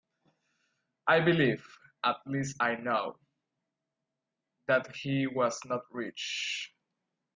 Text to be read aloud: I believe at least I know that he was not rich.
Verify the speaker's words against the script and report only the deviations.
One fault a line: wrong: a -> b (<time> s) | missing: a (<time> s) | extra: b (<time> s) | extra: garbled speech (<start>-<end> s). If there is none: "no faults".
no faults